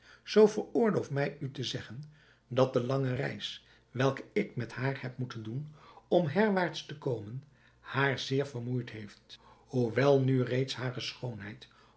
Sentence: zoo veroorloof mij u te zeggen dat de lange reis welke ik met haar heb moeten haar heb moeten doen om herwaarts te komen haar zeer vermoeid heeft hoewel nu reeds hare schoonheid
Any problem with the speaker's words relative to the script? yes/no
yes